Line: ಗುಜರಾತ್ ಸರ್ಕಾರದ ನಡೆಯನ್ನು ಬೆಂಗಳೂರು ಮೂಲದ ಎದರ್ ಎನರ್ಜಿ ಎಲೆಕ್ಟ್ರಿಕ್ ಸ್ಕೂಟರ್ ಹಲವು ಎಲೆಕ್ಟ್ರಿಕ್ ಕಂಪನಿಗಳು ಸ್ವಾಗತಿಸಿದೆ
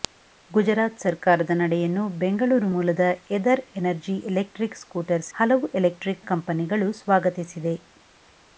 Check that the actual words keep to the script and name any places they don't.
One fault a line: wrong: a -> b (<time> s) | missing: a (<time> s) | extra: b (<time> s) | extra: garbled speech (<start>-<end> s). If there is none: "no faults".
no faults